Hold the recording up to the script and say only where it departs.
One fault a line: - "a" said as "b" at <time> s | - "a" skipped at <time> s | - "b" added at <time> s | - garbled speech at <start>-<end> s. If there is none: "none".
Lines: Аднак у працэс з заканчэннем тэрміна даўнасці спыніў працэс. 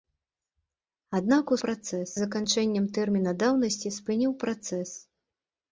none